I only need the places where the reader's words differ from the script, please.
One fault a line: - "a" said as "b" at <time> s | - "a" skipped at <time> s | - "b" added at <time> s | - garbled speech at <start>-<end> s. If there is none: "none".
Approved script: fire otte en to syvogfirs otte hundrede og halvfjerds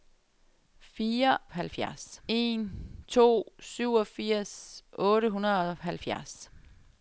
- "otte" said as "halvfjerds" at 1.5 s